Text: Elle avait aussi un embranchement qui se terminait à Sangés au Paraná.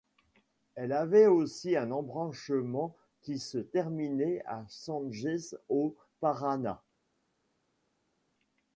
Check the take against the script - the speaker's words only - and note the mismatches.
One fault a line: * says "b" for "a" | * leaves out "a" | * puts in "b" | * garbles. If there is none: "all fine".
all fine